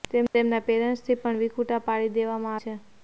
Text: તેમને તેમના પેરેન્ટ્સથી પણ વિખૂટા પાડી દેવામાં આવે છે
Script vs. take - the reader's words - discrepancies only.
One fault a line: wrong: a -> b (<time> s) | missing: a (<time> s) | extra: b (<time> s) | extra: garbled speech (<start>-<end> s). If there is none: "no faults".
missing: આવે (2.6 s)